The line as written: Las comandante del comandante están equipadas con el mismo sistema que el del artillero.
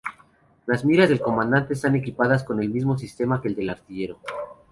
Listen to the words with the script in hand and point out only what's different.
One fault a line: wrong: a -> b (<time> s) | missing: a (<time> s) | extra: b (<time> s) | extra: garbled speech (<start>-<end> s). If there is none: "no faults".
wrong: comandante -> miras (0.8 s)